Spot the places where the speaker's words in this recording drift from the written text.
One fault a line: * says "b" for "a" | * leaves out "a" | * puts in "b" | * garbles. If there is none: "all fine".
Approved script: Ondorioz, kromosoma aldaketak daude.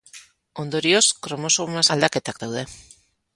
all fine